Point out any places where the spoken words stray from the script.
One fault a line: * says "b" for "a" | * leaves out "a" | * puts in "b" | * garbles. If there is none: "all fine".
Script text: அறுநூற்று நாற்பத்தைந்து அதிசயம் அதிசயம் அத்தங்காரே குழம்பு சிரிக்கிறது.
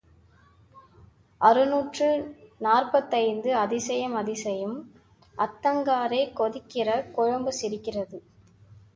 * puts in "கொதிக்கிற"